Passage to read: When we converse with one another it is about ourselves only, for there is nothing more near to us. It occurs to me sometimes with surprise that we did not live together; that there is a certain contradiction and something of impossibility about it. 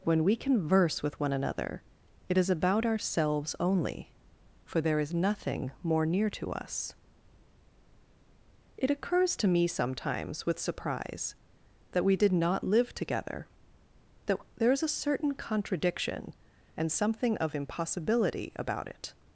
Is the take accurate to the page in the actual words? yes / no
yes